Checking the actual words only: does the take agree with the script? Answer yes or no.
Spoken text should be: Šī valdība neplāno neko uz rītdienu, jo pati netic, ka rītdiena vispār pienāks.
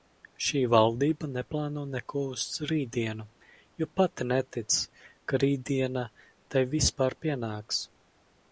no